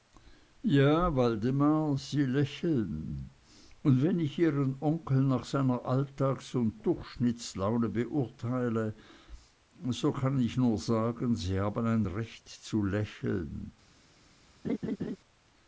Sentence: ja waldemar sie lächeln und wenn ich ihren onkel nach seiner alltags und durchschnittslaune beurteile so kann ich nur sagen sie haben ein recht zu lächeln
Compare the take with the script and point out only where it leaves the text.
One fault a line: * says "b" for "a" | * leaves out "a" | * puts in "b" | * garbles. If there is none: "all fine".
all fine